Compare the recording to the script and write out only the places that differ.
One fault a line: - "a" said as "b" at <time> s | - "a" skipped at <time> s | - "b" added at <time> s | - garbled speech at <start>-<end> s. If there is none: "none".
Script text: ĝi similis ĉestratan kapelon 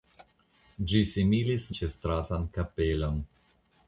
none